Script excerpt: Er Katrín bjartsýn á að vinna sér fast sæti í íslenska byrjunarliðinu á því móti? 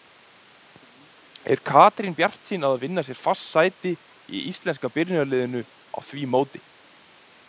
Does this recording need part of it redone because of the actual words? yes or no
no